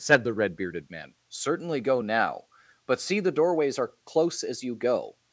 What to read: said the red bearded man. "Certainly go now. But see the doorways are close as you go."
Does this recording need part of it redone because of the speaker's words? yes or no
no